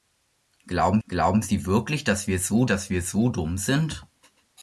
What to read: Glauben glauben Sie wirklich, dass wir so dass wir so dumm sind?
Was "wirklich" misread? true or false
false